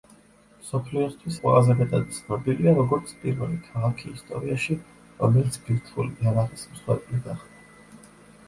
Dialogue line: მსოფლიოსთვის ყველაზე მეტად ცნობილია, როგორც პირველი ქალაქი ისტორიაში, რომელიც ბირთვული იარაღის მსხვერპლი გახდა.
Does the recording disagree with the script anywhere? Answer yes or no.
no